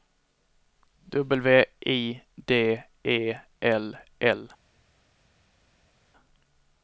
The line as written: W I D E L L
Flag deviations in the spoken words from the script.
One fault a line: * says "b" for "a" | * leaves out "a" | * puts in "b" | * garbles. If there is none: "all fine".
all fine